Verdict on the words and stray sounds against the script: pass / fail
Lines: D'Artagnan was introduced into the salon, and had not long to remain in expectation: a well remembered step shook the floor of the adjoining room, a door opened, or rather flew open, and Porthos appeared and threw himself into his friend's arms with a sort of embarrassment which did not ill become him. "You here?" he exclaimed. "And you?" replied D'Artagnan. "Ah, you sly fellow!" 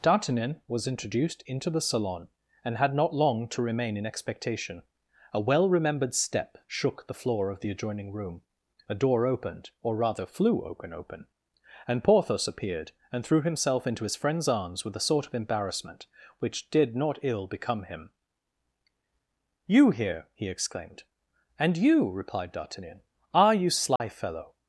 fail